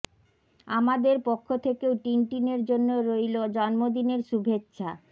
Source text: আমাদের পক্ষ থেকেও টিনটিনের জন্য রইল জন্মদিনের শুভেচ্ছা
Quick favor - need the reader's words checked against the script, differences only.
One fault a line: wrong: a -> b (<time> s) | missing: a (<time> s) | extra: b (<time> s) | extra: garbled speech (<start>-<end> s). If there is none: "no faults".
no faults